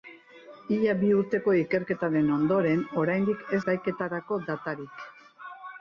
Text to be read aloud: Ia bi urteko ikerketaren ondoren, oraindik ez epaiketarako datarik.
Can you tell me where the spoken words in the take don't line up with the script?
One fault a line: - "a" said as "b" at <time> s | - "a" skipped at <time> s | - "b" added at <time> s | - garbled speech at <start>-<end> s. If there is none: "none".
none